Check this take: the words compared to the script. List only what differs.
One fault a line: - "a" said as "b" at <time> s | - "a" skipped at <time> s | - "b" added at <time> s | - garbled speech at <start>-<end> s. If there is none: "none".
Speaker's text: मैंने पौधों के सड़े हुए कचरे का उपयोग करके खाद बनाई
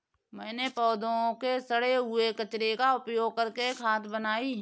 none